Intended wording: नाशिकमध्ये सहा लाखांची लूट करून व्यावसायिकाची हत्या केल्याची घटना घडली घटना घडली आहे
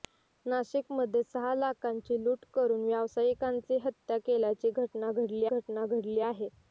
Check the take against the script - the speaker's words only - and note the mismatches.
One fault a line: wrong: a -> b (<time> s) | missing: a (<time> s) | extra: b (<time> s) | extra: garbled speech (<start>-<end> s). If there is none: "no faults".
no faults